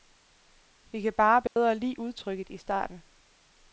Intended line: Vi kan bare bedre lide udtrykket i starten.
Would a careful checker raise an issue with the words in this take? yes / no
no